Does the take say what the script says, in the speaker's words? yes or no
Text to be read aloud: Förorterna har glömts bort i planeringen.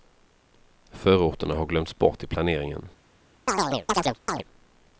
yes